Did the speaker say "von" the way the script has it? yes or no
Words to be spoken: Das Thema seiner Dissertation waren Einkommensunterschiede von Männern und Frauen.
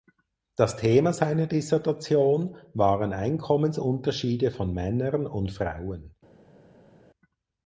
yes